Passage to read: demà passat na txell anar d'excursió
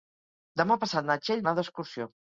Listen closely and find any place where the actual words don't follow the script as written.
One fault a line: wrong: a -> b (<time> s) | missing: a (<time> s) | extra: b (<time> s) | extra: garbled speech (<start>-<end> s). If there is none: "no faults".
no faults